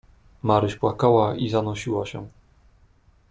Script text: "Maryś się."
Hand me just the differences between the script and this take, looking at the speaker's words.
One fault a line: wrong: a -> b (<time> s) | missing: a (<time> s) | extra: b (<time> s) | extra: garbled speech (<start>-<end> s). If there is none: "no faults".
extra: płakała i zanosiła (0.7 s)